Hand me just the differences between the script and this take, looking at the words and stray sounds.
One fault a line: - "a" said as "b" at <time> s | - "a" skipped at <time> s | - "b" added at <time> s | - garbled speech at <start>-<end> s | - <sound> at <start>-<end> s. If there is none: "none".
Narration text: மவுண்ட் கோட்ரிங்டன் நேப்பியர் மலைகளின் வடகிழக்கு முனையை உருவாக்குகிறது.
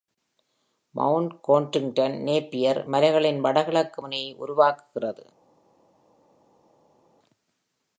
none